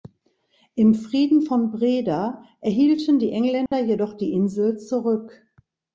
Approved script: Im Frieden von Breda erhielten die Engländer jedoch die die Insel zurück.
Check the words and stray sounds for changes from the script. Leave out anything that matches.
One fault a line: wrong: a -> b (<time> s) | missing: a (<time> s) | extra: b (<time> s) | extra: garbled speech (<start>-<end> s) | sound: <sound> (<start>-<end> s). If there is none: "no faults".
sound: dropout (3.7-3.7 s)
missing: die (4.3 s)